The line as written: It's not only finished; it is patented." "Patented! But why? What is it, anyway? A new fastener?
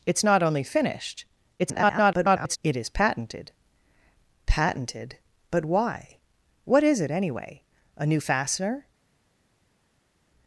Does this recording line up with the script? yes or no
no